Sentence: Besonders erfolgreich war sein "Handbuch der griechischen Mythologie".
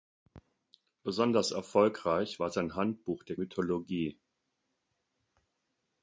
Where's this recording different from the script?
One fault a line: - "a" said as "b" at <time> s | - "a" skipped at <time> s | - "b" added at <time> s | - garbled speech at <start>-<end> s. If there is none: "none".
- "griechischen" skipped at 3.4 s